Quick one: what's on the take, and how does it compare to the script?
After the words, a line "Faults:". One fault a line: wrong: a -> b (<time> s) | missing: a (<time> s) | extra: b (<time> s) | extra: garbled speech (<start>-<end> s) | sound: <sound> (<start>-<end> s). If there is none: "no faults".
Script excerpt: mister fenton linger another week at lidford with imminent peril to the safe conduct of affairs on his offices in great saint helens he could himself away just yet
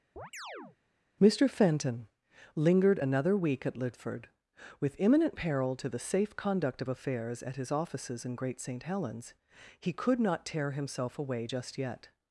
mister fenton lingered another week at lidford with imminent peril to the safe conduct of affairs at his offices in great saint helens he could not tear himself away just yet
Faults:
sound: chirp (0.2-0.8 s)
wrong: linger -> lingered (2.5 s)
wrong: on -> at (7.4 s)
extra: not tear (10.2 s)